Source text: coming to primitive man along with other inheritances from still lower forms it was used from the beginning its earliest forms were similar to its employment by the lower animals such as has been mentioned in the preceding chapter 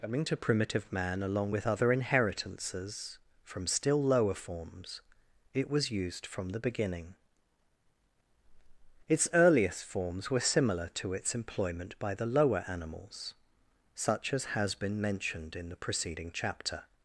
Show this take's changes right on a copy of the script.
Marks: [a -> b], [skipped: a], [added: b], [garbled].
coming to primitive man along with other inheritances from still lower forms it was used from the beginning its earliest forms were similar to its employment by the lower animals such as has been mentioned in the preceding chapter